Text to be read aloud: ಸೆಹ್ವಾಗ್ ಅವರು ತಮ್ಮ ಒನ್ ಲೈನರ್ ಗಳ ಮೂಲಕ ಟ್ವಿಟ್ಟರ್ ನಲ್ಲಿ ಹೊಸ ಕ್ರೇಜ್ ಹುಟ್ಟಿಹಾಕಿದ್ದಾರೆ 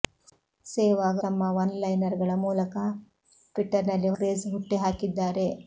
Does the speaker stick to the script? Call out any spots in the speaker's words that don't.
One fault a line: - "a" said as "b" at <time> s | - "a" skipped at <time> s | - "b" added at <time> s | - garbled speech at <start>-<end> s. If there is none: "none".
- "ಅವರು" skipped at 1.2 s
- "ಹೊಸ" skipped at 4.1 s